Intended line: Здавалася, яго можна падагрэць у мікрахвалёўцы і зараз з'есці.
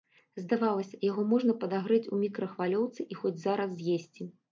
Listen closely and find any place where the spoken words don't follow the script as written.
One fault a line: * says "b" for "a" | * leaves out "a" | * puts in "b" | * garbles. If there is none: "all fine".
* puts in "хоць"